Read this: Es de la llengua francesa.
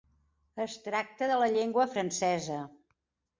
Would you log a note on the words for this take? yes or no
yes